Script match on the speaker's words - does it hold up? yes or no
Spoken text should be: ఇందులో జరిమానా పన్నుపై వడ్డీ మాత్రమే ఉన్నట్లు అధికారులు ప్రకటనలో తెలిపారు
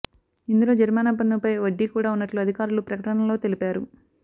no